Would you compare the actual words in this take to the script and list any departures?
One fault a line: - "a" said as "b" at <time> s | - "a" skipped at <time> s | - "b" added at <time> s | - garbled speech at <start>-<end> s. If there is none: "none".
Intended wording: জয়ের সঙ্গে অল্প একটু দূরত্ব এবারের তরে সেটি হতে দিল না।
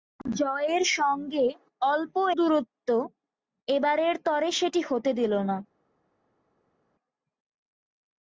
- "একটু" skipped at 2.1 s